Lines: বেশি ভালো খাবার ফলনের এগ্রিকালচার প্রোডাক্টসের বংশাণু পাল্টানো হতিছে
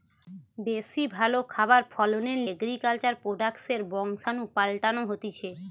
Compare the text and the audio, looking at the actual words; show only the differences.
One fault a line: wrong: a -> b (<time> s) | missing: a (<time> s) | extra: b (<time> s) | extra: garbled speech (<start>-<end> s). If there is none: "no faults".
no faults